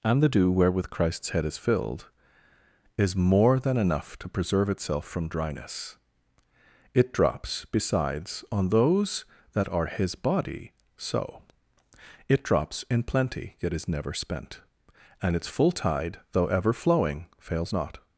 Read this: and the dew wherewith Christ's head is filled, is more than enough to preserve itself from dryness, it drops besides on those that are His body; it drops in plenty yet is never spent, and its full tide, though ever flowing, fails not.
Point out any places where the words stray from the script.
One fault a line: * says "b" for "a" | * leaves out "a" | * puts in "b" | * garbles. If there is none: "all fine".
* puts in "so"